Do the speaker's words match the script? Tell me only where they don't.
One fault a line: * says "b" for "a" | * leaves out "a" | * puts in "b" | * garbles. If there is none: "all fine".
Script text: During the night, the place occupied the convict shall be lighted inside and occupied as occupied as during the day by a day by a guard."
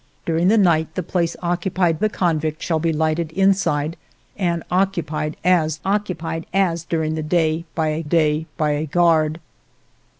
all fine